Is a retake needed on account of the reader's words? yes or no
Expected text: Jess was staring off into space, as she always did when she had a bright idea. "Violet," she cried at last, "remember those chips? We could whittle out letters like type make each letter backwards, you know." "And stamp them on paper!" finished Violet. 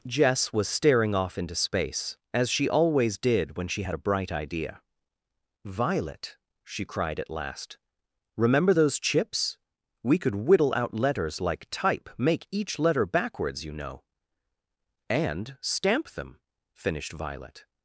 yes